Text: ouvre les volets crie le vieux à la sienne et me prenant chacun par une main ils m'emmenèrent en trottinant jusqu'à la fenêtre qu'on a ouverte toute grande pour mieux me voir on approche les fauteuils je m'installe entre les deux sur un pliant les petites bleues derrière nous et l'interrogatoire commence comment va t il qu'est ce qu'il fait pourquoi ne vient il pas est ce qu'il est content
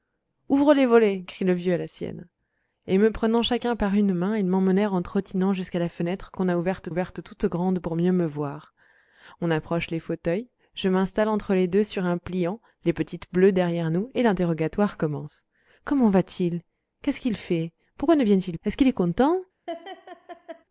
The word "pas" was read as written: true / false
false